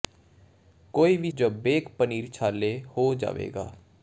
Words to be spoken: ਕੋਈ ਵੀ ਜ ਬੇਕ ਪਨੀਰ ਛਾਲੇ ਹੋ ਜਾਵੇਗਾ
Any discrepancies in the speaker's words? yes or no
no